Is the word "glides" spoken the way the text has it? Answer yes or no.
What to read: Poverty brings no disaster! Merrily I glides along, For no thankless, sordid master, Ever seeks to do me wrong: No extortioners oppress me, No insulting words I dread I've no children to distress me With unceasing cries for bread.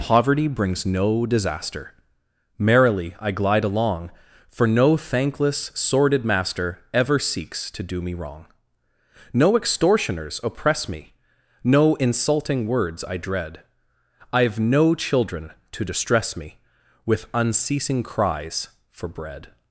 no